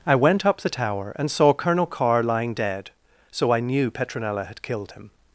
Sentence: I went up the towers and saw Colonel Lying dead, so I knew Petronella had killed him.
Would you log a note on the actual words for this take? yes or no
yes